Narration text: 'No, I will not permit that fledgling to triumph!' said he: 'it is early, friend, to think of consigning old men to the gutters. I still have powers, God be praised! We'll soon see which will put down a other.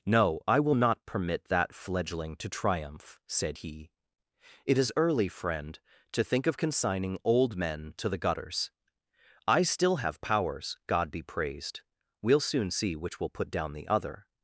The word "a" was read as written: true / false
false